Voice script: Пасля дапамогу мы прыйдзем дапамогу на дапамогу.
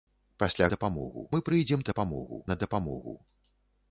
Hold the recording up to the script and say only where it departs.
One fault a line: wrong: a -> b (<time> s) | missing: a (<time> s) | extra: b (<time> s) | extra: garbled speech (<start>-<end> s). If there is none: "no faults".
no faults